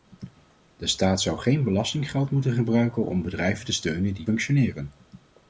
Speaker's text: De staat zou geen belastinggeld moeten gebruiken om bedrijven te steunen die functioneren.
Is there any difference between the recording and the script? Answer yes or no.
no